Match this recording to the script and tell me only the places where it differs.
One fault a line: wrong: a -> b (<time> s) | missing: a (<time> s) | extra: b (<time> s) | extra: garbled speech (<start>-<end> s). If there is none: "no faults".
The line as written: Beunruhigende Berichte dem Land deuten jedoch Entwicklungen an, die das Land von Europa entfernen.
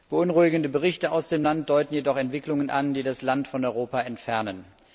extra: aus (1.1 s)